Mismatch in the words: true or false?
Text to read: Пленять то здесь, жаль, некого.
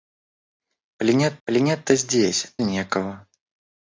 true